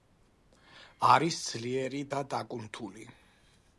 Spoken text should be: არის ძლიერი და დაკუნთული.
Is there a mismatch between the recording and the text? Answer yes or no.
no